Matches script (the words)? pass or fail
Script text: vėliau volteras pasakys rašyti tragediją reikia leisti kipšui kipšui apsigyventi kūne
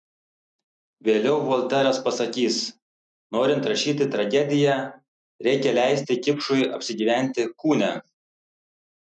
fail